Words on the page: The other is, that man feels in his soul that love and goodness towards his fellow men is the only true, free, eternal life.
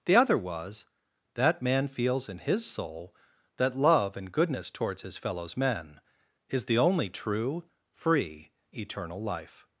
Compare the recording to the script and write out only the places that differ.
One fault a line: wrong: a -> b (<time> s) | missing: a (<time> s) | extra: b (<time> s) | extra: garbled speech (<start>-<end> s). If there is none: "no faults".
wrong: is -> was (0.4 s)
wrong: fellow -> fellows (5.2 s)